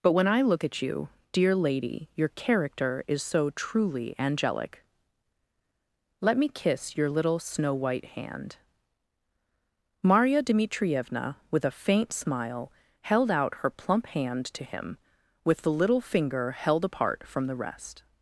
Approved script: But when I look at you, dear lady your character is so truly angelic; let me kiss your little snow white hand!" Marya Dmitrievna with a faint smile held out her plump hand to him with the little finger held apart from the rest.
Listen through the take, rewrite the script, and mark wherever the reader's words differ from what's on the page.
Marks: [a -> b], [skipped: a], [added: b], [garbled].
But when I look at you, dear lady your character is so truly angelic; let me kiss your little snow white hand!" Marya Dmitrievna with a faint smile held out her plump hand to him with the little finger held apart from the rest.